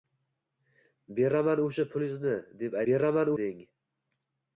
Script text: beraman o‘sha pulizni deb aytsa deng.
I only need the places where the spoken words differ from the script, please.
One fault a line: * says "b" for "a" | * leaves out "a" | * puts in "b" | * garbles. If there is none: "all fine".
* says "beraman" for "aytsa"